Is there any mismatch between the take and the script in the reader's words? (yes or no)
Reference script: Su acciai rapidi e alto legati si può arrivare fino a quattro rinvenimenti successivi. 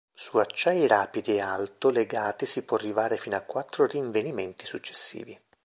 no